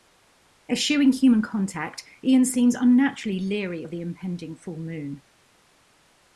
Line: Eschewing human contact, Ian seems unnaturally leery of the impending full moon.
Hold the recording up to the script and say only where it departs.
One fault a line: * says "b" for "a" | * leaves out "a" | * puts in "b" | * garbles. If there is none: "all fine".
all fine